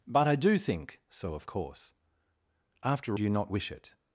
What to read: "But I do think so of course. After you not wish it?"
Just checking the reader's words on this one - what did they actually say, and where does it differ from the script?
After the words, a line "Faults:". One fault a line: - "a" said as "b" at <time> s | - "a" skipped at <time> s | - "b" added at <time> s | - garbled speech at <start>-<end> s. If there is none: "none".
"But I do think so of course. After you not wish it?"
Faults:
none